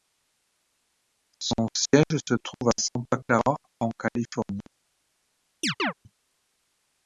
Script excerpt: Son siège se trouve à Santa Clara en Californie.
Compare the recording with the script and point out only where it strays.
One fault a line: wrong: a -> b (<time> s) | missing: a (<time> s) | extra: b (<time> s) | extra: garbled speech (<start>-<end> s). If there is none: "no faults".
no faults